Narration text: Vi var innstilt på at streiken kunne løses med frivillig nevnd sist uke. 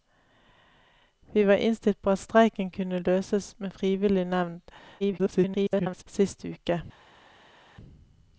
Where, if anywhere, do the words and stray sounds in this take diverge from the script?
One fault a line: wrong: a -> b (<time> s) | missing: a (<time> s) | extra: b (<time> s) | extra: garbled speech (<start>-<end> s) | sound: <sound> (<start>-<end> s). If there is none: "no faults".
extra: garbled speech (5.0-6.0 s)